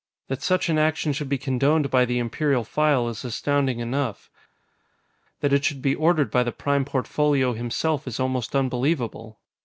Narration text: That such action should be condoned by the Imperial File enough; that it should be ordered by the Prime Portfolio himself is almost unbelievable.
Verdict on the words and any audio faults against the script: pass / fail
fail